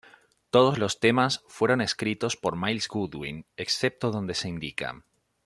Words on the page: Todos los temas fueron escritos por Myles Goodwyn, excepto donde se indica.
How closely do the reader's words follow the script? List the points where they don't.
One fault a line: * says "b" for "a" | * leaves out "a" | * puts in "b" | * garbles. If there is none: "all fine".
all fine